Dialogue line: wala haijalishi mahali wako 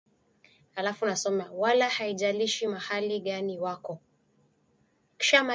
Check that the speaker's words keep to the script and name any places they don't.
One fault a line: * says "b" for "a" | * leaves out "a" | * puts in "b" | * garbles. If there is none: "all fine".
* puts in "gani"